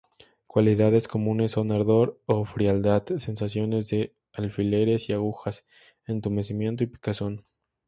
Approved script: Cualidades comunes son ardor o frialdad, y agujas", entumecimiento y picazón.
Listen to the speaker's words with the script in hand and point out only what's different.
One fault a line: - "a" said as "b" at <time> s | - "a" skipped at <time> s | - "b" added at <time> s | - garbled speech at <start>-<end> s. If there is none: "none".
- "sensaciones de alfileres" added at 3.2 s